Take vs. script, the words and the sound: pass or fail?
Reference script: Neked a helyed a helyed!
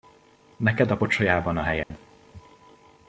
fail